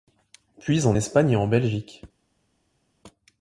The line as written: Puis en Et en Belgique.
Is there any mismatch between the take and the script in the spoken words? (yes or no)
yes